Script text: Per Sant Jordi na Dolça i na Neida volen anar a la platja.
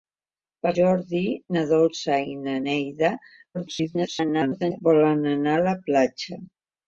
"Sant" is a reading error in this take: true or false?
true